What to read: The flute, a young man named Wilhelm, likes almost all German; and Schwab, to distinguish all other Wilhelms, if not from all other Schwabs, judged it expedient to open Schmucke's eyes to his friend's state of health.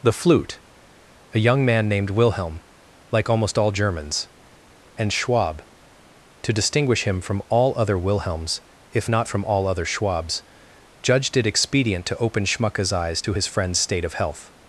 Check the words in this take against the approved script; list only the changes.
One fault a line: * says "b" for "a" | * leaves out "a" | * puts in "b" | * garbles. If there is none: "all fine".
* says "like" for "likes"
* says "Germans" for "German"
* puts in "him from"